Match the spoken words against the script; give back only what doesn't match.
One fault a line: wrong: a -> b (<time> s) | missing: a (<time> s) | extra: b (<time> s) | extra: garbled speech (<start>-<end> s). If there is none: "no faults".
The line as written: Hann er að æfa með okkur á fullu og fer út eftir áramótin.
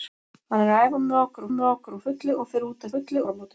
extra: með okkur (1.5 s)
wrong: eftir -> fullu (2.9 s)